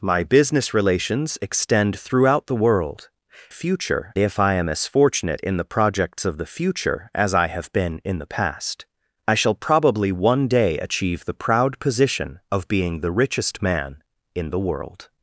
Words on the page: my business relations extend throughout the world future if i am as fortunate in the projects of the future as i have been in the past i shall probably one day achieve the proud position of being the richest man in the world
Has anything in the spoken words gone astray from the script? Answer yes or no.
no